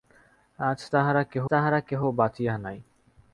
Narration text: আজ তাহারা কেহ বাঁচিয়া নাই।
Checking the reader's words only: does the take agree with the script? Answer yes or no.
no